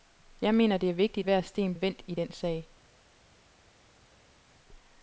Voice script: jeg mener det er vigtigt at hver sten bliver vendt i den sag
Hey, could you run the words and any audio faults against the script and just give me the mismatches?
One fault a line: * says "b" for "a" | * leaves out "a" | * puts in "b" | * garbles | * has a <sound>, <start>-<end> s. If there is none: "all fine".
* leaves out "at"
* leaves out "bliver"